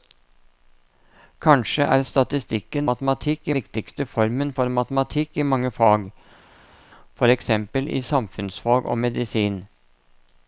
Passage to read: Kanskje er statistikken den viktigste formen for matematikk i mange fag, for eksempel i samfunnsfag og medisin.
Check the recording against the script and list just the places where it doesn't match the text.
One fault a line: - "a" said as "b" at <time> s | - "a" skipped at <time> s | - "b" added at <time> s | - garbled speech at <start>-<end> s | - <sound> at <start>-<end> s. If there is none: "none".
- "den" said as "matematikk" at 2.9 s